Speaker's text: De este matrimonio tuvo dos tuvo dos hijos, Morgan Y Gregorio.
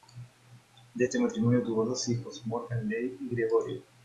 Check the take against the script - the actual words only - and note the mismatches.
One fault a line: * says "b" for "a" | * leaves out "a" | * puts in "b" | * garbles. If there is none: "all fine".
* leaves out "tuvo dos"
* puts in "Leigh"